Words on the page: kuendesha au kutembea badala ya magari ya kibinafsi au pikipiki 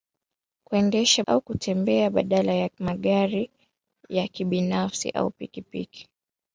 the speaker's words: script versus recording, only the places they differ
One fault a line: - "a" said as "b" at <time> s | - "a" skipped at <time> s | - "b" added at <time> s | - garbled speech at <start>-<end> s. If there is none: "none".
none